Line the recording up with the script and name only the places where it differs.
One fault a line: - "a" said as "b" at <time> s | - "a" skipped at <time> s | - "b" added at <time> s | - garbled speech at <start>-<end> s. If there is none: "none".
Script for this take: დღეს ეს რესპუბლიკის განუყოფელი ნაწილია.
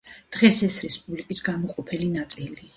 none